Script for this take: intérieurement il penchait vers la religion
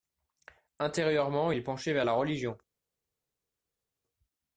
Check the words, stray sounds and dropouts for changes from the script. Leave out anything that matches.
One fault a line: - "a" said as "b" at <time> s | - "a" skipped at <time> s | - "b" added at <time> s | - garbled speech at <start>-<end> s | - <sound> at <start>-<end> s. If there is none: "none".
none